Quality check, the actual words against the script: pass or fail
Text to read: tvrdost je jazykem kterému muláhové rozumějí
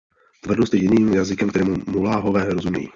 fail